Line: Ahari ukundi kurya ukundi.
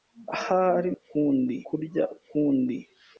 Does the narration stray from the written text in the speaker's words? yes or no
no